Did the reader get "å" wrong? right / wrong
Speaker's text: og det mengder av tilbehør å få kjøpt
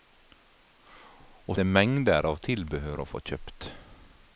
right